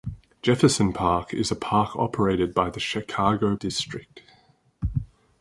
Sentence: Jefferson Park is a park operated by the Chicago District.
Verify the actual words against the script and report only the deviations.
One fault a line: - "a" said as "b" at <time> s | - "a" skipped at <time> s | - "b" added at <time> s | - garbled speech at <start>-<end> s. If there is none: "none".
none